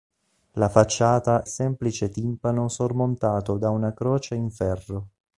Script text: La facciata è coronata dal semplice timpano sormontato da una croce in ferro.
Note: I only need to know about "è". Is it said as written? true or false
false